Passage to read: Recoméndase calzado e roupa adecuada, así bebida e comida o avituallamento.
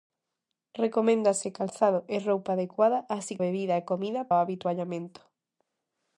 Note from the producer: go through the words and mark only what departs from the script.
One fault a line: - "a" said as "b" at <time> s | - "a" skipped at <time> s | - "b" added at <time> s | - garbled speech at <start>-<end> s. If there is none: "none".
none